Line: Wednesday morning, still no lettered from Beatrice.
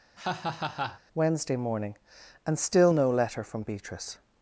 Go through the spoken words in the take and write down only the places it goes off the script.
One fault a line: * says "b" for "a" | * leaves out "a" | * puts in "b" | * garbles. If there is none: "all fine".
* puts in "and"
* says "letter" for "lettered"